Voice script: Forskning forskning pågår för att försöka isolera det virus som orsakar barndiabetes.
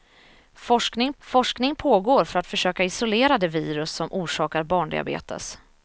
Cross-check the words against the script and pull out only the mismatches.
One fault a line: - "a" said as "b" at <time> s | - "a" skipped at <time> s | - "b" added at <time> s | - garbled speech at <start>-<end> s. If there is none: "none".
none